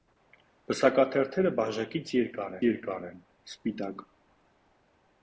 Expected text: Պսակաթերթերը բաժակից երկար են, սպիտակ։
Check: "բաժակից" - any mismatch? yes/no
no